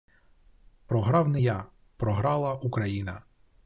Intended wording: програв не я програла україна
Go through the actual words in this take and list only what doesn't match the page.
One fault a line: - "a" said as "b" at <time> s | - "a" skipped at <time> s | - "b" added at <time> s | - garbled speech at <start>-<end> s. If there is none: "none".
none